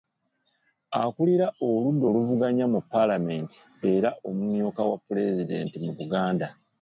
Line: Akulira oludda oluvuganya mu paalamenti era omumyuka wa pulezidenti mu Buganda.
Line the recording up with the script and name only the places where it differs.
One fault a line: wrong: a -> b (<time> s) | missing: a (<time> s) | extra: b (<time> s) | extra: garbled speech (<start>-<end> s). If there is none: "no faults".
no faults